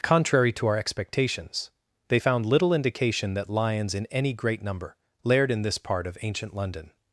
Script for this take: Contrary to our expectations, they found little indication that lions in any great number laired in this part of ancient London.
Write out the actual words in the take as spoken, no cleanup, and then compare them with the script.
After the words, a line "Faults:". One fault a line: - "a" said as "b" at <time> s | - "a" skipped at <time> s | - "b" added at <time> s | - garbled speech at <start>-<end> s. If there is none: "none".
Contrary to our expectations, they found little indication that lions in any great number laired in this part of ancient London.
Faults:
none